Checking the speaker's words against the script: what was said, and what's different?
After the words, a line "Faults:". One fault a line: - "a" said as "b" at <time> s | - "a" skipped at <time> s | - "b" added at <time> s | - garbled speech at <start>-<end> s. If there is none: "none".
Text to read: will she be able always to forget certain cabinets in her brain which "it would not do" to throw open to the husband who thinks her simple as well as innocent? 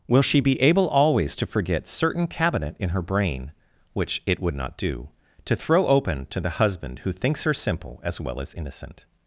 will she be able always to forget certain cabinet in her brain which "it would not do" to throw open to the husband who thinks her simple as well as innocent?
Faults:
- "cabinets" said as "cabinet" at 2.3 s